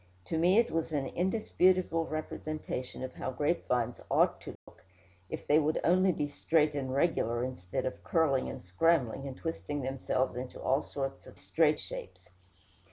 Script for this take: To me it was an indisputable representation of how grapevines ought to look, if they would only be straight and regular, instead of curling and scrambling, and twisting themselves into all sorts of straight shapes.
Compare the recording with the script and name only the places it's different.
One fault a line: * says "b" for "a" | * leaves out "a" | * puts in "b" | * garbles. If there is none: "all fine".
all fine